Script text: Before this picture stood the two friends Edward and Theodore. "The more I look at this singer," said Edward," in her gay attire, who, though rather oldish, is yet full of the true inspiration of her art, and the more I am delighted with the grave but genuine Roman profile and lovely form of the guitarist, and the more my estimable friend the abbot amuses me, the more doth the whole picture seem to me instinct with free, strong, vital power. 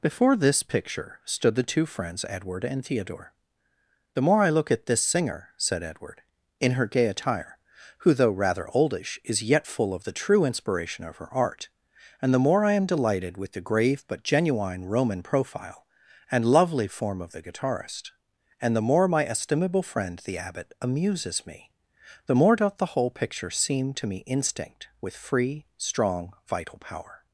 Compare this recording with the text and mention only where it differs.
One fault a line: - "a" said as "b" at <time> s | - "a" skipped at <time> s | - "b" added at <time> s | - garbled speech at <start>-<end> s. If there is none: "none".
none